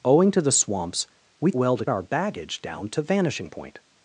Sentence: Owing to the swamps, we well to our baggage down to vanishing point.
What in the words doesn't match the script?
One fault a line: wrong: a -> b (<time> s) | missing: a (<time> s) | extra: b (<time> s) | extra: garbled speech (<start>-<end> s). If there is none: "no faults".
no faults